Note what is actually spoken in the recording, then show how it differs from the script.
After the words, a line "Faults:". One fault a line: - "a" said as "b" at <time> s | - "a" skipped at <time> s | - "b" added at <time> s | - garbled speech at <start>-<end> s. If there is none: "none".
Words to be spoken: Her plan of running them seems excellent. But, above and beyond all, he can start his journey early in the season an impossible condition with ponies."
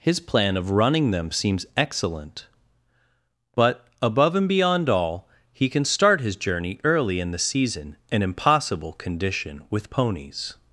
His plan of running them seems excellent. But, above and beyond all, he can start his journey early in the season an impossible condition with ponies."
Faults:
- "Her" said as "His" at 0.0 s